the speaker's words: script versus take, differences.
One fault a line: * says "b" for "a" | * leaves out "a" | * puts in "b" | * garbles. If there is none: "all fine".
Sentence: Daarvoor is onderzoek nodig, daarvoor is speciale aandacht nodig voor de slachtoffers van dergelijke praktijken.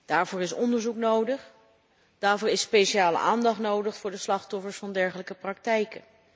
all fine